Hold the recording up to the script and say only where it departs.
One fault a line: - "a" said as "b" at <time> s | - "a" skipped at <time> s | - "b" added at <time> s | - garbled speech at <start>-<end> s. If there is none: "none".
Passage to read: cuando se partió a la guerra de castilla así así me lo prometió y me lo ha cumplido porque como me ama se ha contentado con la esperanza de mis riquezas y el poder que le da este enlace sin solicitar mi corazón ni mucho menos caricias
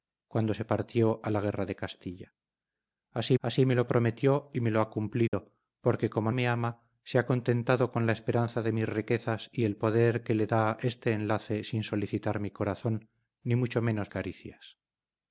none